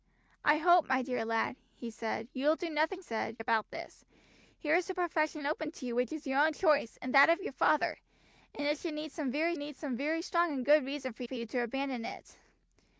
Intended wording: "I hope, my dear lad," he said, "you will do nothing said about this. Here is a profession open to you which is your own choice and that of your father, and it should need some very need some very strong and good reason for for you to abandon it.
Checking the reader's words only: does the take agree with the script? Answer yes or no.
yes